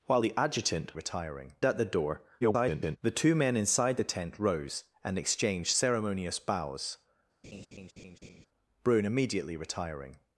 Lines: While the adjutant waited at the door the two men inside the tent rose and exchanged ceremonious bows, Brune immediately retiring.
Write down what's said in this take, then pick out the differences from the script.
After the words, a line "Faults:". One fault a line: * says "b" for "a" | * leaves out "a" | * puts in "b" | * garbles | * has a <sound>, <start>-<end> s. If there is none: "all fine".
While the adjutant retiring at the door [garbled] the two men inside the tent rose and exchanged ceremonious bows, Brune immediately retiring.
Faults:
* says "retiring" for "waited"
* garbles
* has a laugh, 7.4-8.5 s